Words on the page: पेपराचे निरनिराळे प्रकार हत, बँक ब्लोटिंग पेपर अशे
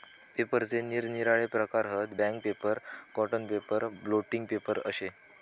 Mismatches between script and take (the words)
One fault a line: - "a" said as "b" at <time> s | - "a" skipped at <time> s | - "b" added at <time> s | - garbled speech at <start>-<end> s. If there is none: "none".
- "पेपर कॉटन पेपर" added at 2.4 s